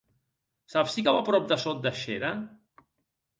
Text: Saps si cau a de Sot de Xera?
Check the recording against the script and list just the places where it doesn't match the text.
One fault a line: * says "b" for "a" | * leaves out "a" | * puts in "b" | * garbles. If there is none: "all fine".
* puts in "prop"